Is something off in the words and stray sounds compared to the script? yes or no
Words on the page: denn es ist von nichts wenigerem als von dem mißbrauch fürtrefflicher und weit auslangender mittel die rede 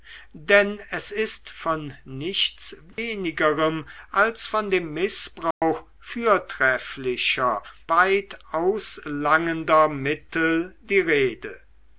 yes